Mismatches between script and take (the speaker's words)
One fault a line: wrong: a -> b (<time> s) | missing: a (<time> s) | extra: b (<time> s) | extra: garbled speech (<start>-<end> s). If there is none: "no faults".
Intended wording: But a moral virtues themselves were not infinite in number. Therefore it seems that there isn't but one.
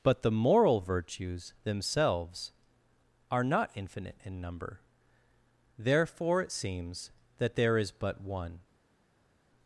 wrong: a -> the (0.2 s)
wrong: were -> are (3.3 s)
wrong: isn't -> is (7.8 s)